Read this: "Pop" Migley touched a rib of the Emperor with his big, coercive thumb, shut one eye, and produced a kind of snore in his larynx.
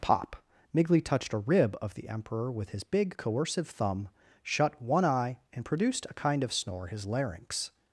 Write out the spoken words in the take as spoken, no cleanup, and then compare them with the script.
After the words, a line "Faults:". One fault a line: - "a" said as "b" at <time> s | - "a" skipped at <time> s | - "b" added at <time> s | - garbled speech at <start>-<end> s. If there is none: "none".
"Pop" Migley touched a rib of the Emperor with his big, coercive thumb, shut one eye, and produced a kind of snore his larynx.
Faults:
- "in" skipped at 6.9 s